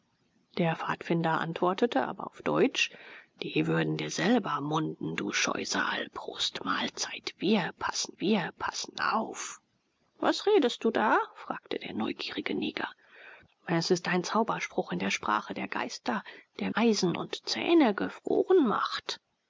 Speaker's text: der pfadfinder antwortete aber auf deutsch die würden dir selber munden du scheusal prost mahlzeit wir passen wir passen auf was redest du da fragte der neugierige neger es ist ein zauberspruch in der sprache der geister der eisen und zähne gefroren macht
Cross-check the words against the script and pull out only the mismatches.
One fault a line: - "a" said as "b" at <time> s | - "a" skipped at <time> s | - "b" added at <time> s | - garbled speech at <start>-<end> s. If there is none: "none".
none